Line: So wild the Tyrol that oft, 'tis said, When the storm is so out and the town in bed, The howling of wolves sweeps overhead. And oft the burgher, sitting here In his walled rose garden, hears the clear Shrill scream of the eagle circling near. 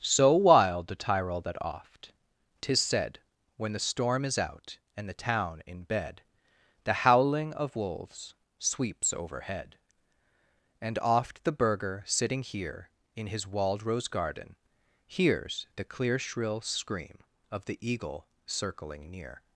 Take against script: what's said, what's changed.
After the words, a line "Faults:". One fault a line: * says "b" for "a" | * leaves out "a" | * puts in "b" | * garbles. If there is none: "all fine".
So wild the Tyrol that oft, 'tis said, When the storm is out and the town in bed, The howling of wolves sweeps overhead. And oft the burgher, sitting here In his walled rose garden, hears the clear Shrill scream of the eagle circling near.
Faults:
* leaves out "so"